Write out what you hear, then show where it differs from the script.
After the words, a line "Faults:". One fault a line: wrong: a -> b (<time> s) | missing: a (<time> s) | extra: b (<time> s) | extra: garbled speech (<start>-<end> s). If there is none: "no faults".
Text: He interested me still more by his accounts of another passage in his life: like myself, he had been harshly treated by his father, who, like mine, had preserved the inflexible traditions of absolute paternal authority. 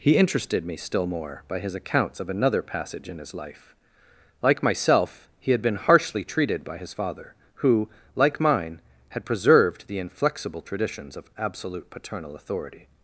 He interested me still more by his accounts of another passage in his life: like myself, he had been harshly treated by his father, who, like mine, had preserved the inflexible traditions of absolute paternal authority.
Faults:
no faults